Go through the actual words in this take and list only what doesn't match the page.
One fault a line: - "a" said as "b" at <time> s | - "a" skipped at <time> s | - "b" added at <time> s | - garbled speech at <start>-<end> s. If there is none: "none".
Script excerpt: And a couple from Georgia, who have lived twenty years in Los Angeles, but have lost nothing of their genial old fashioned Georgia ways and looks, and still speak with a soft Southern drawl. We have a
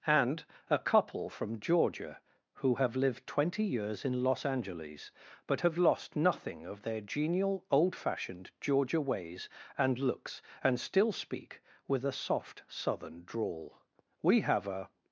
none